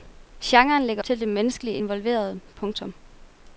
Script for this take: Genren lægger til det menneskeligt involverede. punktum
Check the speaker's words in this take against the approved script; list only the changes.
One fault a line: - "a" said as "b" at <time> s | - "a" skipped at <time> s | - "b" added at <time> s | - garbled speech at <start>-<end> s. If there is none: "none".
none